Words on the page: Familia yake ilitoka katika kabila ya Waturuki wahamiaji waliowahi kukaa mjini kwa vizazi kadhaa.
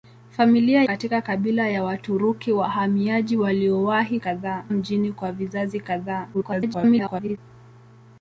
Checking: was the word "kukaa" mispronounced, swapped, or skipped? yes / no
yes